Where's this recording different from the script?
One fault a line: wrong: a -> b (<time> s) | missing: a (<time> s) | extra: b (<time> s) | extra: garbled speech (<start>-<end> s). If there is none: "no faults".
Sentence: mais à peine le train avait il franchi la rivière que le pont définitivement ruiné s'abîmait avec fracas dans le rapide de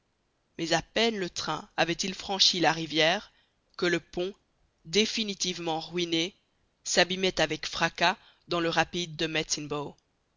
no faults